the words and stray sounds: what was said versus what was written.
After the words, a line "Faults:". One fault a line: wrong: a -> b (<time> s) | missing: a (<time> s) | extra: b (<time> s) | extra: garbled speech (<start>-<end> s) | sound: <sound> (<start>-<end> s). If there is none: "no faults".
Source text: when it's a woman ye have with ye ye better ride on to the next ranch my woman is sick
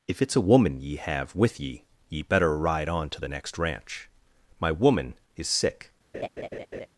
if it's a woman ye have with ye ye better ride on to the next ranch my woman is sick
Faults:
wrong: when -> if (0.1 s)
sound: laugh (6.1-6.9 s)